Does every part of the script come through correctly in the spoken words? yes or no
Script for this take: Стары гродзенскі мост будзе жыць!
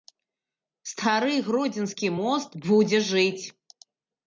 yes